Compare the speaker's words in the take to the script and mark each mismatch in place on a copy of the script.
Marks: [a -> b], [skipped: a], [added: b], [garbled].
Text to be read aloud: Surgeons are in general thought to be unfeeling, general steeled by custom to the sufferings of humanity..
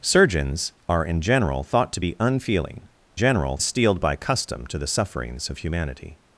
Surgeons are in general thought to be unfeeling, general steeled by custom to the sufferings of humanity..